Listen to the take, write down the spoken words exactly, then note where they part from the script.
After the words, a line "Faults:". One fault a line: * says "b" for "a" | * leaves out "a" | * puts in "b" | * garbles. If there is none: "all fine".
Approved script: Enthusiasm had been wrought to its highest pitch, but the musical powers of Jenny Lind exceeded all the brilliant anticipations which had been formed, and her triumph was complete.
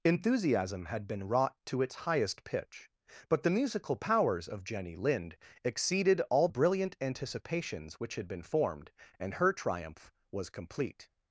Enthusiasm had been wrought to its highest pitch, but the musical powers of Jenny Lind exceeded all brilliant anticipations which had been formed, and her triumph was complete.
Faults:
* leaves out "the"